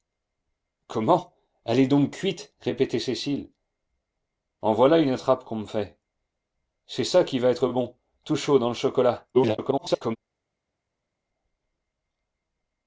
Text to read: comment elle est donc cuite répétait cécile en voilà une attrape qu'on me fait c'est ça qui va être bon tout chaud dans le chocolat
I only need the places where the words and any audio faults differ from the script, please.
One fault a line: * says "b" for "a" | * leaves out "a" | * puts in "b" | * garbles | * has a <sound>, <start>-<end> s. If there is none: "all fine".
* garbles